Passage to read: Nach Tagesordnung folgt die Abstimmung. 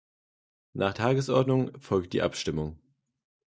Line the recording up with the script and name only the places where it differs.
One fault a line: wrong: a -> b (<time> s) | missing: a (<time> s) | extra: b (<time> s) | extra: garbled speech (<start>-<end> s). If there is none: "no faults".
no faults